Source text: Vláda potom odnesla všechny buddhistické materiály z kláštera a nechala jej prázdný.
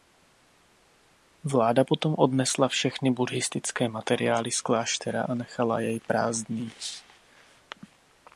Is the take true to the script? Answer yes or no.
yes